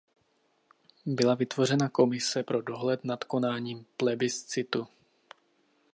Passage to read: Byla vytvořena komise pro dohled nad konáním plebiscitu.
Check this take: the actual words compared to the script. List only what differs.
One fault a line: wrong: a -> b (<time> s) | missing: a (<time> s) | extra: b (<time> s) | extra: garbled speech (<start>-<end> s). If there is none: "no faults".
no faults